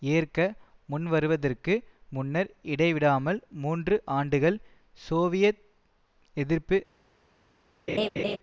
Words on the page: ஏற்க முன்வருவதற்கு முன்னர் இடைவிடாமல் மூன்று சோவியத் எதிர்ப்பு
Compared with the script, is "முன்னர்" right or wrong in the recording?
right